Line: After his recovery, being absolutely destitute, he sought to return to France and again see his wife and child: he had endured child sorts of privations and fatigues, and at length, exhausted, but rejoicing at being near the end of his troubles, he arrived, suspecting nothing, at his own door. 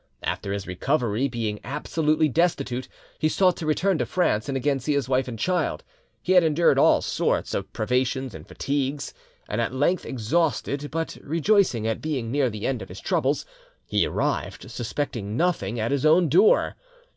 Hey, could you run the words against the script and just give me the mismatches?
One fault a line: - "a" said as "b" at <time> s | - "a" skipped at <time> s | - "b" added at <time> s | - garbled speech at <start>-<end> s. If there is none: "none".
- "child" said as "all" at 6.8 s